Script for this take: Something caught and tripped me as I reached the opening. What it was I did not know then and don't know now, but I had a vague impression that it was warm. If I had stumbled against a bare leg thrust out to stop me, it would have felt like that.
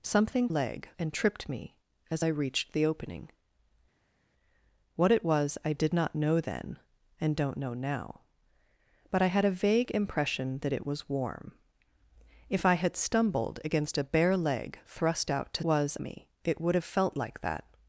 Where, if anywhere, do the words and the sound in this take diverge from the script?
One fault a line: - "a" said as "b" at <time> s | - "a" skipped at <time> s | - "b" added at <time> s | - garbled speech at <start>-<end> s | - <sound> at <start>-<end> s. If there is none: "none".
- "caught" said as "leg" at 0.5 s
- "stop" said as "was" at 15.6 s